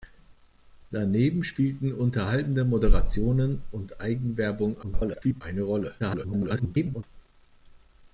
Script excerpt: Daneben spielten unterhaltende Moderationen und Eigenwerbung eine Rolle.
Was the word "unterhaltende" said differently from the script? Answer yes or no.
no